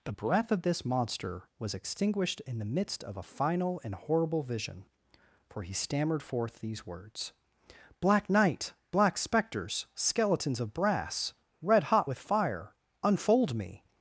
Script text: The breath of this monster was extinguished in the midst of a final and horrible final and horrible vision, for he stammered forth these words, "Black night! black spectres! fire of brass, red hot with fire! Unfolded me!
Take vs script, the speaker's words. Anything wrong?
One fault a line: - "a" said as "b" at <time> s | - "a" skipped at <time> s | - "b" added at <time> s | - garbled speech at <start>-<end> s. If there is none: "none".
- "final and horrible" skipped at 4.4 s
- "fire" said as "skeletons" at 10.0 s
- "Unfolded" said as "Unfold" at 13.0 s